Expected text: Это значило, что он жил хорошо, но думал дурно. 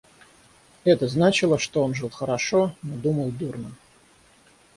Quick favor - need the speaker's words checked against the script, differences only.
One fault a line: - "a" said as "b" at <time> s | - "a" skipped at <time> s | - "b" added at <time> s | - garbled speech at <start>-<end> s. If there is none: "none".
none